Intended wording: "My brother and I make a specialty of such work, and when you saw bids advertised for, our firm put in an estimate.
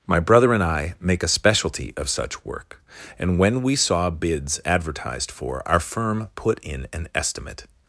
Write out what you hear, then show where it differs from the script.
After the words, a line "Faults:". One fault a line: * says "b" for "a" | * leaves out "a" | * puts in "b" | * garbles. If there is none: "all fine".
"My brother and I make a specialty of such work, and when we saw bids advertised for, our firm put in an estimate.
Faults:
* says "we" for "you"